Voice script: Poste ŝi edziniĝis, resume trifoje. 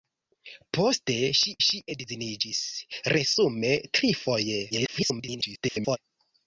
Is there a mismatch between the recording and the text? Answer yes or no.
yes